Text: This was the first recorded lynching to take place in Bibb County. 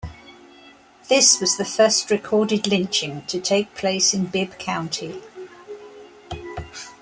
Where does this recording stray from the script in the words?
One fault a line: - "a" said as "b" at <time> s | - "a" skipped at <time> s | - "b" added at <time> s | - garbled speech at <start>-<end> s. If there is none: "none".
none